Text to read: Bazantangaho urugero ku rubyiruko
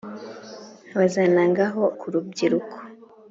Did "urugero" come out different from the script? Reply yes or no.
yes